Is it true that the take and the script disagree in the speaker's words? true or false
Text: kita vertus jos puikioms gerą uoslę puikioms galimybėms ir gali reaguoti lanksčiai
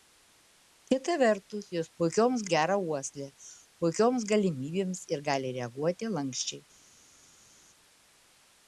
false